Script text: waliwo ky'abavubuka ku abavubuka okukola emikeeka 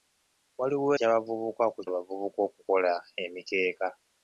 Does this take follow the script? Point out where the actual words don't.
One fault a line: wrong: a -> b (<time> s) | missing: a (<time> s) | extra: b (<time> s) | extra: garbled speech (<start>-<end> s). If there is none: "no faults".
no faults